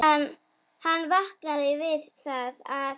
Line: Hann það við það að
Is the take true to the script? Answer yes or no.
no